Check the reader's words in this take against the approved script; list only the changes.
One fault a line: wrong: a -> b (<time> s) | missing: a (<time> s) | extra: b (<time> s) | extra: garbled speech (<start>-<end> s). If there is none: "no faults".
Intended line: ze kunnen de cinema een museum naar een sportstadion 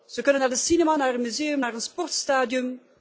extra: naar (0.4 s)
extra: naar (1.0 s)